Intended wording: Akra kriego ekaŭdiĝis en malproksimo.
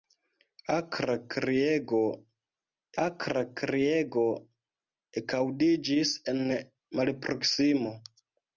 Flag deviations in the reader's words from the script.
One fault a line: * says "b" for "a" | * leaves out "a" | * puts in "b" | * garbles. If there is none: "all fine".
* puts in "akra kriego"